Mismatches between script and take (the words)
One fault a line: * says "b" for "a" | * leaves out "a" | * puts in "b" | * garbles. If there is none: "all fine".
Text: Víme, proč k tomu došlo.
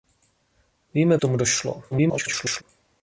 * leaves out "proč"
* garbles